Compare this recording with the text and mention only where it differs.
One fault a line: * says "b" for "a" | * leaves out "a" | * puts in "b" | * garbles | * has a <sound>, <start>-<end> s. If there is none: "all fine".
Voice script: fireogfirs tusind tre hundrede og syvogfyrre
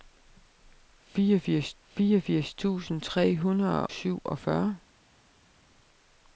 * puts in "fireogfirs"
* leaves out "og"